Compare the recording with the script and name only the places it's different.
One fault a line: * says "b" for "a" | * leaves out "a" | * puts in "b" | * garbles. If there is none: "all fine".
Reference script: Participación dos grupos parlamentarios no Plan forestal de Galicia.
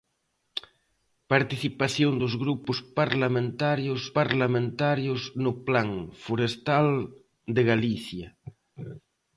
* puts in "parlamentarios"